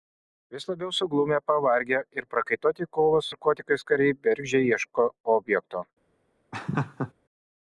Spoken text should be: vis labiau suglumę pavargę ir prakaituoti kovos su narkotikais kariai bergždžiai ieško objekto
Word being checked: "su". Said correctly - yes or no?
no